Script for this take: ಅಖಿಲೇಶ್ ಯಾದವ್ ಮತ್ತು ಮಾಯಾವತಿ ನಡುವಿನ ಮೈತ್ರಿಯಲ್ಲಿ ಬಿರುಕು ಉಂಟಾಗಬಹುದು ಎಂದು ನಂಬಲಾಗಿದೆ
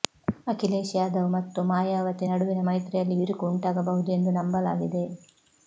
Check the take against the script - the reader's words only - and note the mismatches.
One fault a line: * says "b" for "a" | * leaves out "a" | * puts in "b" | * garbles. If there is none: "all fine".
all fine